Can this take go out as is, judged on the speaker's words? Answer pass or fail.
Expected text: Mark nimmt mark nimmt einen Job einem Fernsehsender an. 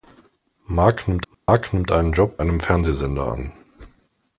pass